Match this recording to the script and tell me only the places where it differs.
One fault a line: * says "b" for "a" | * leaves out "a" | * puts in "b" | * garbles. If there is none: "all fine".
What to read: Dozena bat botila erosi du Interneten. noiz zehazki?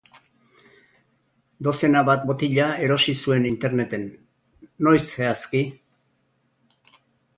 * says "zuen" for "du"